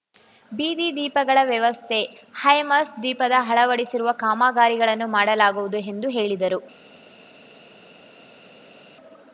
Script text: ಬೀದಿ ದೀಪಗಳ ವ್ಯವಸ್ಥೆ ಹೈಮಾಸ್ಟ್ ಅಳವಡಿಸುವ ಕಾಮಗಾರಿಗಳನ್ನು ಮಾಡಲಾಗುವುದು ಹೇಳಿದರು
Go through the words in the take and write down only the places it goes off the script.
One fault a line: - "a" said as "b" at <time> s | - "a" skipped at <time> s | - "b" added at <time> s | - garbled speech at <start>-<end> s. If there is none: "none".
- "ದೀಪದ" added at 3.0 s
- "ಎಂದು" added at 5.9 s